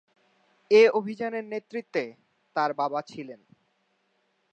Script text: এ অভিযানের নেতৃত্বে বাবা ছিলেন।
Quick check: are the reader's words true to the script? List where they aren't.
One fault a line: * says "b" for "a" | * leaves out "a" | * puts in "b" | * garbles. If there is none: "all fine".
* puts in "তার"